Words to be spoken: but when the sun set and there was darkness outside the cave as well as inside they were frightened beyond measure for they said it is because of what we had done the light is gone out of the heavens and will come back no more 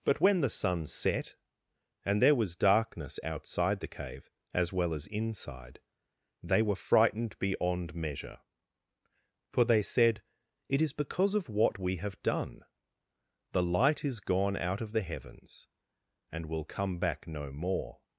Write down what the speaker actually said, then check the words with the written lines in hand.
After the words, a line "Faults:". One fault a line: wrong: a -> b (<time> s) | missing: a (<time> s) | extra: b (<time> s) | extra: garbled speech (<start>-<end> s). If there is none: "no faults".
but when the sun set and there was darkness outside the cave as well as inside they were frightened beyond measure for they said it is because of what we have done the light is gone out of the heavens and will come back no more
Faults:
wrong: had -> have (12.0 s)